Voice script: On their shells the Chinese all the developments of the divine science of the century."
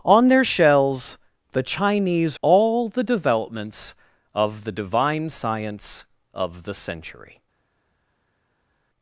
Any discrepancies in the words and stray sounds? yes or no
no